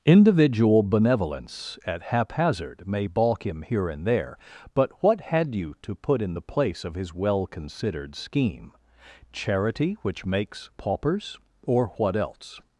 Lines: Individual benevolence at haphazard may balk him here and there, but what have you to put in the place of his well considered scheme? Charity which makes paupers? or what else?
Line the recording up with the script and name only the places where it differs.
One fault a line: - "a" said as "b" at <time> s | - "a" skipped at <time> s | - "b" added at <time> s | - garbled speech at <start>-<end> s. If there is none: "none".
- "have" said as "had" at 5.2 s